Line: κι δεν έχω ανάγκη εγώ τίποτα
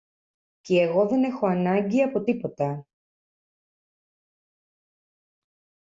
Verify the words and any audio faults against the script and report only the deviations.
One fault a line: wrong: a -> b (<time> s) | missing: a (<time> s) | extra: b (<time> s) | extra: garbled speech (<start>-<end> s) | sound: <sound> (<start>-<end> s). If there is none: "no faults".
extra: εγώ (0.8 s)
wrong: εγώ -> από (2.0 s)